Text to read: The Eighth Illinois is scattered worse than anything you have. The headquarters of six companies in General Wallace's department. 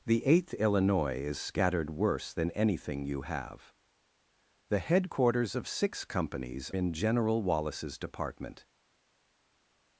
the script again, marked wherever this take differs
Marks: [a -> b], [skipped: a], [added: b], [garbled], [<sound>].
The Eighth Illinois is scattered worse than anything you have. The headquarters of six companies in General Wallace's department.